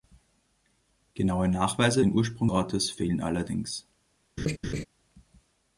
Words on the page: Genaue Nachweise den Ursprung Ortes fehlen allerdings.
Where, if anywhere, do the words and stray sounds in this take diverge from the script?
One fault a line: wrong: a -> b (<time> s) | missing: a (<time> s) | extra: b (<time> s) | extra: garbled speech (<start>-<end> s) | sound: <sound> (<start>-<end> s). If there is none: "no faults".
sound: laugh (4.4-4.8 s)